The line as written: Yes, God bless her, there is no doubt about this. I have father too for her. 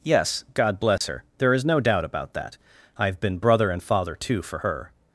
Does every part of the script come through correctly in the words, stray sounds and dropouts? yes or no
no